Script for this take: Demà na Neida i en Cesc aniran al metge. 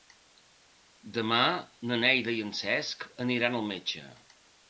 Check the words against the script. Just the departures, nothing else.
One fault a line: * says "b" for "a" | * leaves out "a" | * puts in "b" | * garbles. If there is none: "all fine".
all fine